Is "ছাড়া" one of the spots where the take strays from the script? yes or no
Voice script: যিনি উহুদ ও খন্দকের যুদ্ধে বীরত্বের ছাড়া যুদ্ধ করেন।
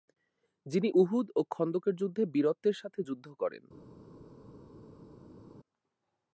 yes